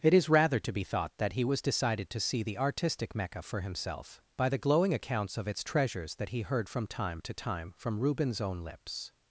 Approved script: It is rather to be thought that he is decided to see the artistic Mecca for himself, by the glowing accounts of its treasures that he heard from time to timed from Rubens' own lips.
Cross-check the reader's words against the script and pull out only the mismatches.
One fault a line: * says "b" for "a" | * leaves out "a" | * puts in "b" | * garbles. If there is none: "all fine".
* says "was" for "is"
* says "time" for "timed"